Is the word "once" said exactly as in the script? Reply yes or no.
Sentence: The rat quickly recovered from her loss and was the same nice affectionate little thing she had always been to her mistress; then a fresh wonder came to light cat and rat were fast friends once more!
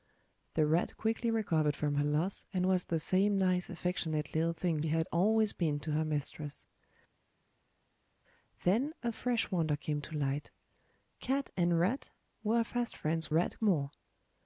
no